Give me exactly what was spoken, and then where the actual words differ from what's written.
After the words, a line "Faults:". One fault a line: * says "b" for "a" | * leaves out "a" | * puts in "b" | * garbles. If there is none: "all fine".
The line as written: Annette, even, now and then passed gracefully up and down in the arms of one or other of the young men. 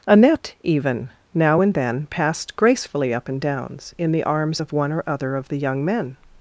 Annette, even, now and then passed gracefully up and downs in the arms of one or other of the young men.
Faults:
* says "downs" for "down"